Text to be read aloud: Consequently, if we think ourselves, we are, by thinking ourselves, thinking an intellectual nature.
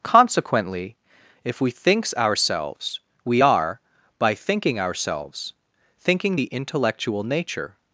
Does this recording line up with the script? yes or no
no